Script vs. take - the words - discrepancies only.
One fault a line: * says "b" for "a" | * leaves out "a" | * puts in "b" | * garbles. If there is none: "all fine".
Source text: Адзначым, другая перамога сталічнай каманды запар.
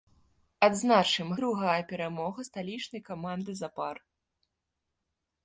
all fine